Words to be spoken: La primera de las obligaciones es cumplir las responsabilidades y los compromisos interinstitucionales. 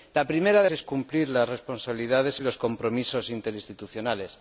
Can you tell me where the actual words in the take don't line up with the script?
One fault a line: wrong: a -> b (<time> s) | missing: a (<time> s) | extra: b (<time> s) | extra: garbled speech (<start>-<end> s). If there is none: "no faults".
missing: las obligaciones (0.7 s)